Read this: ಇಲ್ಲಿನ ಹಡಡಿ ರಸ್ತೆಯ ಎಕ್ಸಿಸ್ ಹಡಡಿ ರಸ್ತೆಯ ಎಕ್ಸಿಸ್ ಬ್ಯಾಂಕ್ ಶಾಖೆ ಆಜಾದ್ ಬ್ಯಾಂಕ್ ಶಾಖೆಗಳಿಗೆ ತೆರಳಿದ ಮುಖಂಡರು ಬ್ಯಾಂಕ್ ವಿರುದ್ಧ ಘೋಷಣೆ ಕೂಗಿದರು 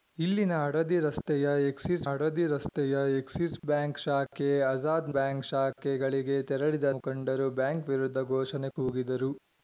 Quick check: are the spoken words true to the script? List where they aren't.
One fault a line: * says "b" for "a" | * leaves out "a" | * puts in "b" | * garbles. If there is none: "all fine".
all fine